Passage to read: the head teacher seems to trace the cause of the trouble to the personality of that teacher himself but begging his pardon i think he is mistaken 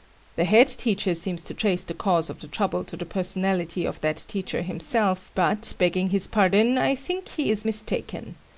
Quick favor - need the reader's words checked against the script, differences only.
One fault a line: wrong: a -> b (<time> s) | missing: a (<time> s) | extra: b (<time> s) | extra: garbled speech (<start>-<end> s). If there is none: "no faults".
no faults